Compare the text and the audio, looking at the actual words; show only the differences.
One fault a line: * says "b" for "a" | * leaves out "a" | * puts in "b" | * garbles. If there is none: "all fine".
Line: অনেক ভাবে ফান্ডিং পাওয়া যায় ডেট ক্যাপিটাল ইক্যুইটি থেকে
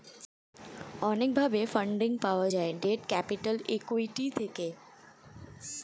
all fine